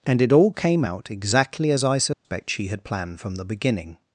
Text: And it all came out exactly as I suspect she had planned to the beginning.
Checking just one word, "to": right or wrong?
wrong